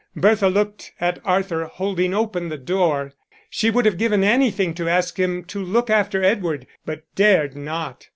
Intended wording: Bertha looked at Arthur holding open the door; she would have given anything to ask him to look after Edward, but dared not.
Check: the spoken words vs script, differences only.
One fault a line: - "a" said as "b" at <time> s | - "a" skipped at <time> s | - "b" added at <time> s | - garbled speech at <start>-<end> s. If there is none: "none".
none